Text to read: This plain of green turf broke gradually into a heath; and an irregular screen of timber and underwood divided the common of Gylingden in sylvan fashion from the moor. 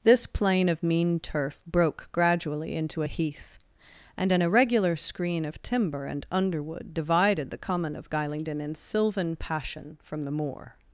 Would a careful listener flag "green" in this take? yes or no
yes